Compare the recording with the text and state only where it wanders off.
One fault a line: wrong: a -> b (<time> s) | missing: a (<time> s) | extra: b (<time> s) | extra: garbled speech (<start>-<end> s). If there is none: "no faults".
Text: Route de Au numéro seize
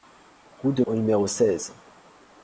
no faults